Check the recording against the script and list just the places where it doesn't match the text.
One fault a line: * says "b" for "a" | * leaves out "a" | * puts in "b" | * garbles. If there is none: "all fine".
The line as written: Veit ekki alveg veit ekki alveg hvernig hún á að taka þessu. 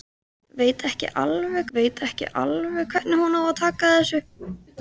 all fine